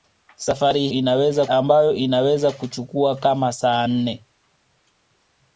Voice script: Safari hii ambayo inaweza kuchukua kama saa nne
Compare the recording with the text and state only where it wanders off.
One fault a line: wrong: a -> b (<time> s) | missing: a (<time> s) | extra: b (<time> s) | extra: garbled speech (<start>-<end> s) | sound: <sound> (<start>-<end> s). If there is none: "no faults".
wrong: hii -> inaweza (0.9 s)